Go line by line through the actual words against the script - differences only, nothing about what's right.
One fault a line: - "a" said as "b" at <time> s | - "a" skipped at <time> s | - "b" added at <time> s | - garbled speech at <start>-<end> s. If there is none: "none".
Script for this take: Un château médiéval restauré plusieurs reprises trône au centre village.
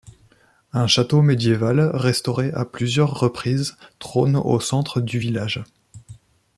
- "à" added at 2.5 s
- "du" added at 5.0 s